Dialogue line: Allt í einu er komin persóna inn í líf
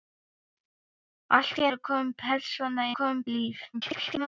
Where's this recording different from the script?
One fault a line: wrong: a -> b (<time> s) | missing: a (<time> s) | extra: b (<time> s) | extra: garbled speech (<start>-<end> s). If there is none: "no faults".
missing: einu (1.7 s)
wrong: inn -> komin (3.0 s)
extra: garbled speech (3.7-4.3 s)